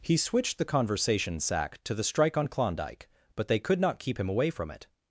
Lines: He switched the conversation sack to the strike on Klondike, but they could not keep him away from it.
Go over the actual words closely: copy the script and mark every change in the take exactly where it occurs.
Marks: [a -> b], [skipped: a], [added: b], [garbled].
He switched the conversation sack to the strike on Klondike, but they could not keep him away from it.